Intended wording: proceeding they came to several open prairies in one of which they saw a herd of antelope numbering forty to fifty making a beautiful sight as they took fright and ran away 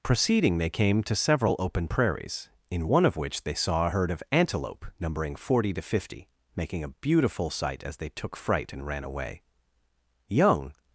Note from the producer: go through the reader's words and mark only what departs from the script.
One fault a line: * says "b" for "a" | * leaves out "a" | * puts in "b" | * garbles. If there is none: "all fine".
* puts in "young"